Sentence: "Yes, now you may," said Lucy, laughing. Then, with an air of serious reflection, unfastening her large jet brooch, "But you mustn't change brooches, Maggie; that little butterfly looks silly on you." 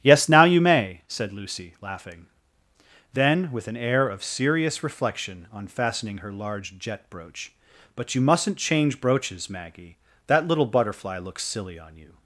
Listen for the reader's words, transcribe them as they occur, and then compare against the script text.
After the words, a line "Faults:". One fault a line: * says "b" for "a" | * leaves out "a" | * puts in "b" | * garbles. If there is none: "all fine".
"Yes, now you may," said Lucy, laughing. Then, with an air of serious reflection, unfastening her large jet brooch, "But you mustn't change brooches, Maggie; that little butterfly looks silly on you."
Faults:
all fine